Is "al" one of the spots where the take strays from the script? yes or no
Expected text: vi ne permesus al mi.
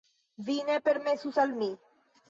no